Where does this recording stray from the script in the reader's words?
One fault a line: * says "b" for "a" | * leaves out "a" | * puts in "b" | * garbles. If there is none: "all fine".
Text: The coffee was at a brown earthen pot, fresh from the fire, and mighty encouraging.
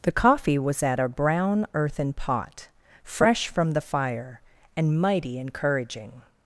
all fine